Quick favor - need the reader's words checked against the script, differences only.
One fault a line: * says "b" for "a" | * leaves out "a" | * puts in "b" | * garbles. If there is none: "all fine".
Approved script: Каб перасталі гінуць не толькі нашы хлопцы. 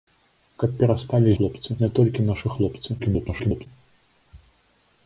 * says "хлопцы" for "гінуць"
* garbles